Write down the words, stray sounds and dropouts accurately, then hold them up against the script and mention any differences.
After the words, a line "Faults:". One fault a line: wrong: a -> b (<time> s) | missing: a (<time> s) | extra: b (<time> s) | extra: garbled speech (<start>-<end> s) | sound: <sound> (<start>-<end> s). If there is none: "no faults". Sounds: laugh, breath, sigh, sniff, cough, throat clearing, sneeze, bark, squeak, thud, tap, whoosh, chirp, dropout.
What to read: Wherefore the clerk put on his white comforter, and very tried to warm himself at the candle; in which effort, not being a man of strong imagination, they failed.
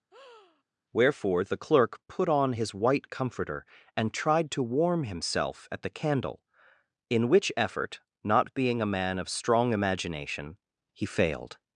Wherefore the clerk put on his white comforter, and tried to warm himself at the candle; in which effort, not being a man of strong imagination, he failed.
Faults:
sound: breath (0.1-0.6 s)
missing: very (4.1 s)
wrong: they -> he (10.9 s)